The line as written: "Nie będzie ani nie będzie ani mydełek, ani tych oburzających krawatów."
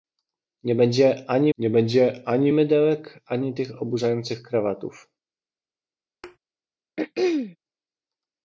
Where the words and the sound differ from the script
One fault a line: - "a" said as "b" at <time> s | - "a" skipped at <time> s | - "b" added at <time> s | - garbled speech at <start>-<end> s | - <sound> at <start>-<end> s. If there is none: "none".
- thud at 6.2-6.4 s
- throat clearing at 7.0-7.6 s